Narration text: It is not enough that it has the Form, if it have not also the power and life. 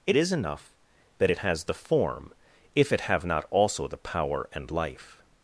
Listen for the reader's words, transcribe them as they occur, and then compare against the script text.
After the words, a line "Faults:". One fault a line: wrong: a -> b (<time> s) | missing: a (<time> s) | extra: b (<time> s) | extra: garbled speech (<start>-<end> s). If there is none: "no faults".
It is enough that it has the Form, if it have not also the power and life.
Faults:
missing: not (0.3 s)